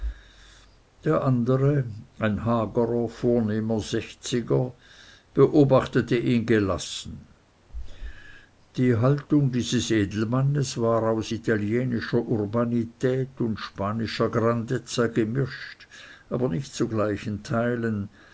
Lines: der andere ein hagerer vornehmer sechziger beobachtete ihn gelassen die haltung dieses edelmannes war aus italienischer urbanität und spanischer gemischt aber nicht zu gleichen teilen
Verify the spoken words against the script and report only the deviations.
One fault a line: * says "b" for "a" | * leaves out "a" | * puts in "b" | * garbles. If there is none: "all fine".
* puts in "grandezza"